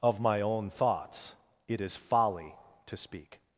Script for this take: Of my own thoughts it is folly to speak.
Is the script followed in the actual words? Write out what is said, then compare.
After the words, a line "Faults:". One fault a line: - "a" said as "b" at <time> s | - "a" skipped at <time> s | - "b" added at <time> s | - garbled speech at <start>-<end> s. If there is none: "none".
Of my own thoughts it is folly to speak.
Faults:
none